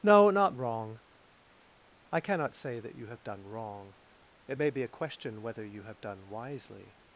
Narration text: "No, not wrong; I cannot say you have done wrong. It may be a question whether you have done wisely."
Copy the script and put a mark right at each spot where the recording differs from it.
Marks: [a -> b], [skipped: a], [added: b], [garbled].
"No, not wrong; I cannot say [added: that] you have done wrong. It may be a question whether you have done wisely."